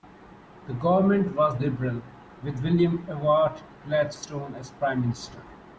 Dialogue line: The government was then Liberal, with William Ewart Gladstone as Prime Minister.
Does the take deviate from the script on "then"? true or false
true